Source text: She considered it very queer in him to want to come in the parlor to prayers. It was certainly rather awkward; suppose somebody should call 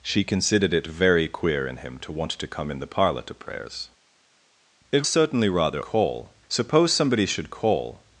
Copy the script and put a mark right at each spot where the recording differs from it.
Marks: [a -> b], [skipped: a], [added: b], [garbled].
She considered it very queer in him to want to come in the parlor to prayers. It [skipped: was] certainly rather [awkward; -> call] suppose somebody should call